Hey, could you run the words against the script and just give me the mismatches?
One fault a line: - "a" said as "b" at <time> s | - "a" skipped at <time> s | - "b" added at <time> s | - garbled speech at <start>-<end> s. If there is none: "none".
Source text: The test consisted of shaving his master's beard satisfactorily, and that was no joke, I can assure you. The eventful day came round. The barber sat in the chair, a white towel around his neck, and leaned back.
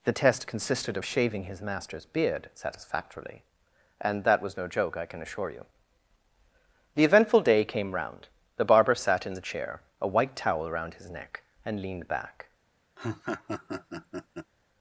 none